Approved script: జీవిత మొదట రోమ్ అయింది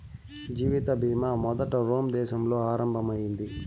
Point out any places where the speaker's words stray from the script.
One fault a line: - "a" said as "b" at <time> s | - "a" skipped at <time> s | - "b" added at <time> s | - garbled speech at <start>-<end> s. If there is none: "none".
- "బీమా" added at 1.0 s
- "దేశంలో ఆరంభం" added at 2.1 s